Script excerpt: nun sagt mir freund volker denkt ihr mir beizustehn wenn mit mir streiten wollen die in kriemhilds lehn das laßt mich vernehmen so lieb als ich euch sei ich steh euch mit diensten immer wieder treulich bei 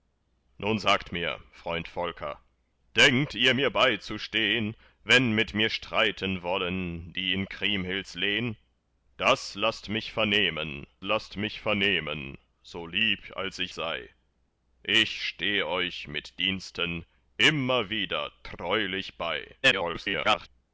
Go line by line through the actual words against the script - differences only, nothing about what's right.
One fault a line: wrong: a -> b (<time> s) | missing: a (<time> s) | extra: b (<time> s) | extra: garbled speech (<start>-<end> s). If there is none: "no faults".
extra: laßt mich vernehmen (11.0 s)
missing: euch (13.7 s)
extra: garbled speech (19.6-20.5 s)